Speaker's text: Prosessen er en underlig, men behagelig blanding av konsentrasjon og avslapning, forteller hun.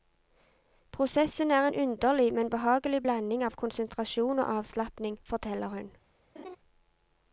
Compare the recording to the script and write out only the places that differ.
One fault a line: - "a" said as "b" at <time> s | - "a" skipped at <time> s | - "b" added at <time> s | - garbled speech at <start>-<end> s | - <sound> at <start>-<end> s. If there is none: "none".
- laugh at 6.4-6.6 s